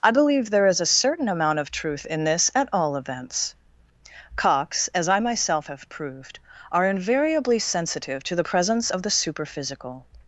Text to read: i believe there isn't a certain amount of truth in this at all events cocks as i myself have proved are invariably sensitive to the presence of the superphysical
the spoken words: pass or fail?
fail